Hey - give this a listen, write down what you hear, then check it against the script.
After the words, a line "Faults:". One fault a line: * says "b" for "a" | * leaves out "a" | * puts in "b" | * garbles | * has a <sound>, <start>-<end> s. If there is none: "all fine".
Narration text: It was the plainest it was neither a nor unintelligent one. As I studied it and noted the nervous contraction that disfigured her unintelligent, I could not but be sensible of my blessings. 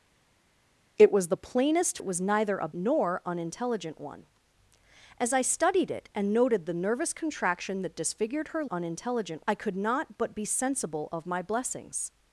It was the plainest it was neither a nor unintelligent one. As I studied it and noted the nervous contraction that disfigured her unintelligent, I could not but be sensible of my blessings.
Faults:
all fine